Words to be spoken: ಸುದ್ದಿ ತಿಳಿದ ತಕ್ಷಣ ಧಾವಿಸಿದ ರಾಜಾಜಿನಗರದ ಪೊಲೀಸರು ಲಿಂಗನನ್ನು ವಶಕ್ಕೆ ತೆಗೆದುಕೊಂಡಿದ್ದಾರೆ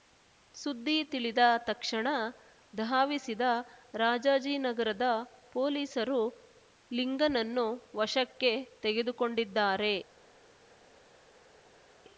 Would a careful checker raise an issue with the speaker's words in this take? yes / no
no